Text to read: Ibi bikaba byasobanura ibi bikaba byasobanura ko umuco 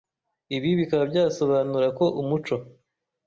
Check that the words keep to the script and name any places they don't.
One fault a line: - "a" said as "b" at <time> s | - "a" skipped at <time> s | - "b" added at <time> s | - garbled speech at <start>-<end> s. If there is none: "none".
- "ibi bikaba byasobanura" skipped at 1.9 s